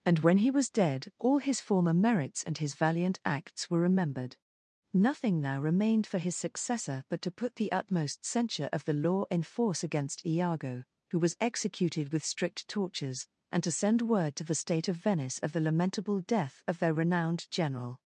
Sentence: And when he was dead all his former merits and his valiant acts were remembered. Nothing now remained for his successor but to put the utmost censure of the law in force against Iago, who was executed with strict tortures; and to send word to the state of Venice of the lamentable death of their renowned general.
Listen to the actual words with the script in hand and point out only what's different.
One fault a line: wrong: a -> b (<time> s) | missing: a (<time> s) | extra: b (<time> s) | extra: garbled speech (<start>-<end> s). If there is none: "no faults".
no faults